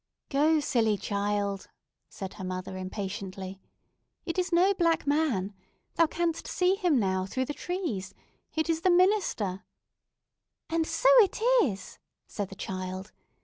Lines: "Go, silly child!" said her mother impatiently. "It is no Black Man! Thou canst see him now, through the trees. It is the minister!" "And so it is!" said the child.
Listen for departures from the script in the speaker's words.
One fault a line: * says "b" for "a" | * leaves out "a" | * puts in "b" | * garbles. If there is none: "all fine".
all fine